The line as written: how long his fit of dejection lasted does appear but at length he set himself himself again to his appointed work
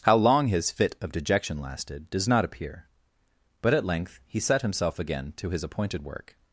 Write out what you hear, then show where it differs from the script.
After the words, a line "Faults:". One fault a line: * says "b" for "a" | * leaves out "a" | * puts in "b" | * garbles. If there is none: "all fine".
how long his fit of dejection lasted does not appear but at length he set himself again to his appointed work
Faults:
* puts in "not"
* leaves out "himself"